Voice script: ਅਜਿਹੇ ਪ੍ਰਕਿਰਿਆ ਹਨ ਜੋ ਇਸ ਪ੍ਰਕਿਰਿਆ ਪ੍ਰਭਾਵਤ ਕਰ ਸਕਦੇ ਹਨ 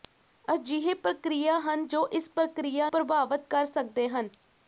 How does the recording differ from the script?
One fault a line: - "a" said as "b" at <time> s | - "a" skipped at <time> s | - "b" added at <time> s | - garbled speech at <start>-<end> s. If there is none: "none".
none